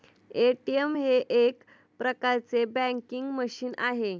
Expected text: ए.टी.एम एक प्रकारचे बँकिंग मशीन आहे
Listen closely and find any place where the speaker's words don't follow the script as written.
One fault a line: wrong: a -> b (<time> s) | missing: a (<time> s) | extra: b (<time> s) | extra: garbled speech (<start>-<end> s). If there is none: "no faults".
extra: हे (1.0 s)